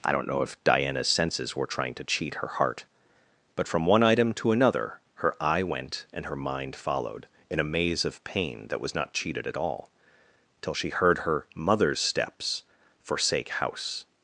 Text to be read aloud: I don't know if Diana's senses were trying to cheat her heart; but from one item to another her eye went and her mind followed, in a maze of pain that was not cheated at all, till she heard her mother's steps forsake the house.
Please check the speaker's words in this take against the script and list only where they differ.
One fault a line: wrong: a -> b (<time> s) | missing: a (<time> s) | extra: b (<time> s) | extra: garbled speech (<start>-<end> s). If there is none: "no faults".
missing: the (13.5 s)